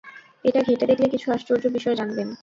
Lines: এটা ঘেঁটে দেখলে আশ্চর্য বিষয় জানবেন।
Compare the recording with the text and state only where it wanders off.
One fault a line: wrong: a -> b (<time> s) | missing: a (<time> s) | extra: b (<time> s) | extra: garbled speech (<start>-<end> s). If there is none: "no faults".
extra: কিছু (1.1 s)